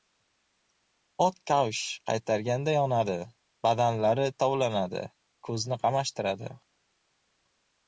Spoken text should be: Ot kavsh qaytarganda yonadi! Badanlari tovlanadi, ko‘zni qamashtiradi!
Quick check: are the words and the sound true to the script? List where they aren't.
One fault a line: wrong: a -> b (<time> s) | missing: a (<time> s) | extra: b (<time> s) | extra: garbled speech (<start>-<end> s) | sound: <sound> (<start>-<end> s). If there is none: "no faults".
no faults